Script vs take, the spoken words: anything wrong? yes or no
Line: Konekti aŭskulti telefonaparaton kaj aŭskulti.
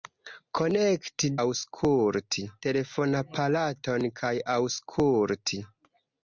no